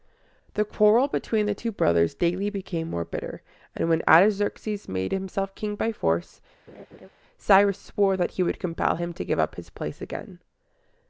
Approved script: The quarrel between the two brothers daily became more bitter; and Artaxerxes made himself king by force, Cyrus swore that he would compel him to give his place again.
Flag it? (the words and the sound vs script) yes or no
yes